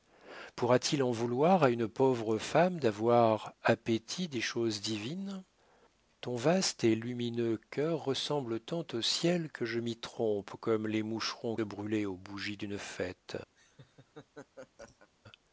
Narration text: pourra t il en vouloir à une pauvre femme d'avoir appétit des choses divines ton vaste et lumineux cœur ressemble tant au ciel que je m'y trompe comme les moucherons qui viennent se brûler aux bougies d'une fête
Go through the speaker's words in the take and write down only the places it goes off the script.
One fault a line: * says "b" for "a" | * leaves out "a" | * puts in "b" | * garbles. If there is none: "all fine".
* leaves out "qui viennent se"